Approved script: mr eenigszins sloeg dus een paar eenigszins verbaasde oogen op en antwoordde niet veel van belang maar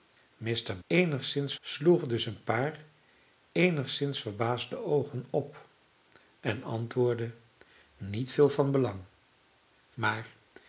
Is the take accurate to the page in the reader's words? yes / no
yes